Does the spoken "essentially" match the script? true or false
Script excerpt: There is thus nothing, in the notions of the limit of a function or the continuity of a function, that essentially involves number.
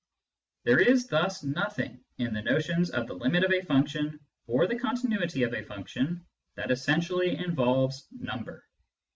true